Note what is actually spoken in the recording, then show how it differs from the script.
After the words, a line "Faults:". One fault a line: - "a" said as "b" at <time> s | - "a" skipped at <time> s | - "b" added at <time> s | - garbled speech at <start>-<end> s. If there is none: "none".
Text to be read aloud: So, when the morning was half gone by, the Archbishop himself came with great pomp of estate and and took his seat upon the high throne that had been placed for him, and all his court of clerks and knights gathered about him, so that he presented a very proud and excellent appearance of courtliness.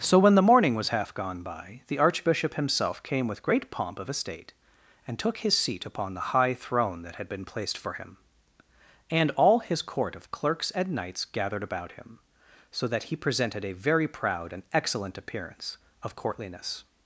So, when the morning was half gone by, the Archbishop himself came with great pomp of estate and took his seat upon the high throne that had been placed for him, and all his court of clerks and knights gathered about him, so that he presented a very proud and excellent appearance of courtliness.
Faults:
- "and" skipped at 5.2 s